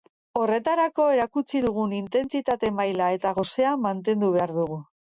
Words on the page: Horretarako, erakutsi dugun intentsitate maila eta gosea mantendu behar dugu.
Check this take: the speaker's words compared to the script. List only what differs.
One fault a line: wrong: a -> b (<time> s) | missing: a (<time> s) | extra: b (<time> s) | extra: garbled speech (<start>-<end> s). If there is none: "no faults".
no faults